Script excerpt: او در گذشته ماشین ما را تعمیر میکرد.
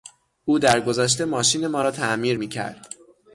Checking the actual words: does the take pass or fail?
pass